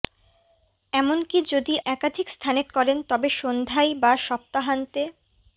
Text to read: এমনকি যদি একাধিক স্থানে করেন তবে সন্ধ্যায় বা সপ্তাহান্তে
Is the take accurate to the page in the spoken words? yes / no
yes